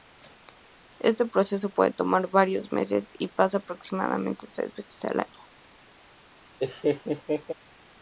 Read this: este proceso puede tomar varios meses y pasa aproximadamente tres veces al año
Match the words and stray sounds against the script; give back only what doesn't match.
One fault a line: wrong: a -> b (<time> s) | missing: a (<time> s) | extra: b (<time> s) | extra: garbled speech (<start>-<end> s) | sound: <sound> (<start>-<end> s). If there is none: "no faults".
sound: laugh (6.6-7.5 s)